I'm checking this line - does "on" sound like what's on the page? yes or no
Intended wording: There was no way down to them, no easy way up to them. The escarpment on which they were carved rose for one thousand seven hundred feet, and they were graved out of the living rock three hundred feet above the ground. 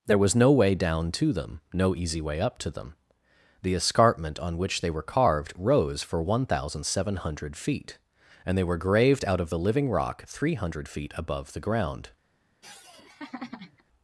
yes